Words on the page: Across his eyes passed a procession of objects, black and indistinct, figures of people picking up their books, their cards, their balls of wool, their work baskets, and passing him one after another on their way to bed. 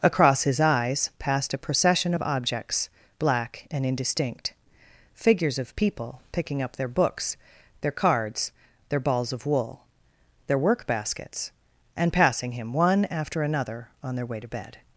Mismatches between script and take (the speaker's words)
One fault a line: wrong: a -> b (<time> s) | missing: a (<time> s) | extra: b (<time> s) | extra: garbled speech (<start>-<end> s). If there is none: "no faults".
no faults